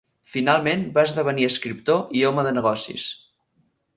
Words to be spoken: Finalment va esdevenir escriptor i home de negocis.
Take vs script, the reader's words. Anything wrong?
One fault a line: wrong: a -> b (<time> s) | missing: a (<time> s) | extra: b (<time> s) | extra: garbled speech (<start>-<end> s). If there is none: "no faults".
no faults